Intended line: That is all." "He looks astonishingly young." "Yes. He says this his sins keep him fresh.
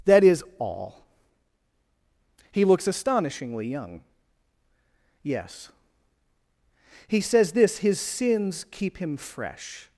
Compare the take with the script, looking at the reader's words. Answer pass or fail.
pass